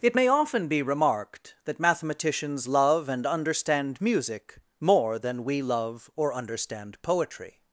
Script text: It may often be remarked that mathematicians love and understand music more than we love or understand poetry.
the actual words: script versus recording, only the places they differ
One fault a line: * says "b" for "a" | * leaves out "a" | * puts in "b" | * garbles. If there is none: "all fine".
all fine